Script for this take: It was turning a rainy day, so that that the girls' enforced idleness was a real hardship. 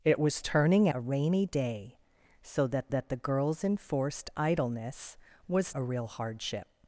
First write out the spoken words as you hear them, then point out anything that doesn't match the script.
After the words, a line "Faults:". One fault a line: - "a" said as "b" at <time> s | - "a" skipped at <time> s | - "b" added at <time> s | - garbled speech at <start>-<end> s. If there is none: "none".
It was turning a rainy day, so that that the girls' enforced idleness was a real hardship.
Faults:
none